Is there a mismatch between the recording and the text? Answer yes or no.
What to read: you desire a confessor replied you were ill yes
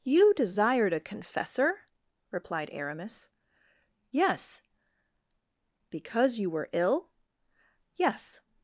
yes